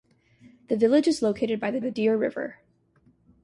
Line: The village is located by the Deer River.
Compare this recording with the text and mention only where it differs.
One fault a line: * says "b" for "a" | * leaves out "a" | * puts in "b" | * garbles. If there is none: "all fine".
* puts in "the"